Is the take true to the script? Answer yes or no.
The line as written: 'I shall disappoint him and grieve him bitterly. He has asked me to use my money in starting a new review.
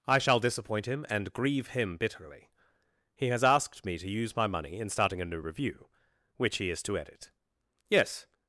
no